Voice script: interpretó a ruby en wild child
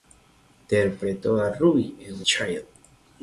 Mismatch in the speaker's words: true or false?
true